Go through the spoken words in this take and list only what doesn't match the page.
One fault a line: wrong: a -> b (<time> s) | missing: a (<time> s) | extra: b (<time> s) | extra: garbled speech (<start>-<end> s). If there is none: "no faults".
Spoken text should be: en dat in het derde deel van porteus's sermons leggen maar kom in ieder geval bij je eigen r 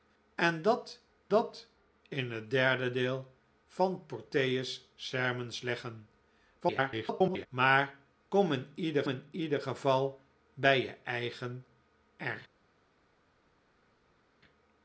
extra: dat (1.3 s)
extra: garbled speech (6.6-7.5 s)
extra: in ieder (9.1 s)